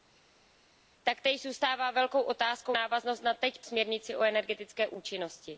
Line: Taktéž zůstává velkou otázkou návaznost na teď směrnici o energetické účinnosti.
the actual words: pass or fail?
pass